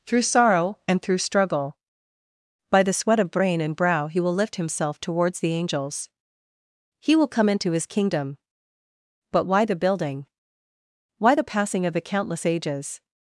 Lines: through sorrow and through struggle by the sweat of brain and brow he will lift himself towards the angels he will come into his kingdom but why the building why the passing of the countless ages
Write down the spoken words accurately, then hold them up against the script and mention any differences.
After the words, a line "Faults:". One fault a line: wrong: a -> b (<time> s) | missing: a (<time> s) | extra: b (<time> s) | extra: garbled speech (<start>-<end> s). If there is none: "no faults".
through sorrow and through struggle by the sweat of brain and brow he will lift himself towards the angels he will come into his kingdom but why the building why the passing of the countless ages
Faults:
no faults